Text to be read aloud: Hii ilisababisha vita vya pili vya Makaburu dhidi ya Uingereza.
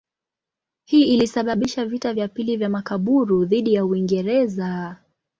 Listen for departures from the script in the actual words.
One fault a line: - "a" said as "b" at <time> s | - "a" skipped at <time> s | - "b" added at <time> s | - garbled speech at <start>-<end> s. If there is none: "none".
none